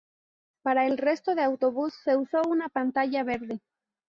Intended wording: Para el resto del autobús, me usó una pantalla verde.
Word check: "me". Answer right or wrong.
wrong